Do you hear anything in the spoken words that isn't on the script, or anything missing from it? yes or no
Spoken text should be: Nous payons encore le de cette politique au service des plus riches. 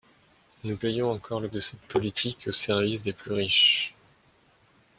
no